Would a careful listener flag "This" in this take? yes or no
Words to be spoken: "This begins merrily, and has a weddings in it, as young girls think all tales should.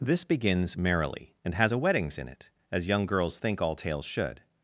no